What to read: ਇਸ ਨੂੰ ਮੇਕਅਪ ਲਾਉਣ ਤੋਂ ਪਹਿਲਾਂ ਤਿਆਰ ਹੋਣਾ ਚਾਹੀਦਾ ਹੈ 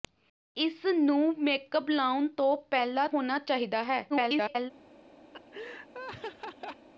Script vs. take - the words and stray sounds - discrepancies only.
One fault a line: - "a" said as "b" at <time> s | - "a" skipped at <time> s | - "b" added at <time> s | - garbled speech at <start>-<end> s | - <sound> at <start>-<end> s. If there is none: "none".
- "ਤਿਆਰ" skipped at 3.1 s
- garbled speech at 4.1-4.7 s
- laugh at 5.3-6.9 s